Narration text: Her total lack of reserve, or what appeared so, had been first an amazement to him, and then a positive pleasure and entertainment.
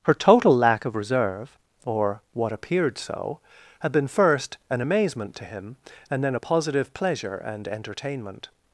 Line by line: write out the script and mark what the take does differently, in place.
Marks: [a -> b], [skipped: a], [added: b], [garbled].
Her total lack of reserve, or what appeared so, had been first an amazement to him, and then a positive pleasure and entertainment.